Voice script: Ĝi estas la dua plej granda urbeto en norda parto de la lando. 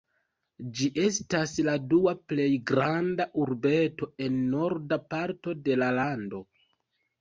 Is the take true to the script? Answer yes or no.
yes